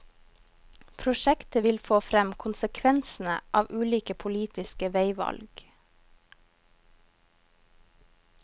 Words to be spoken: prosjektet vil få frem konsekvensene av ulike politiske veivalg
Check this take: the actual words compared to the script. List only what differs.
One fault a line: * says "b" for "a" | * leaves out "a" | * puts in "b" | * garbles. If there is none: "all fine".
all fine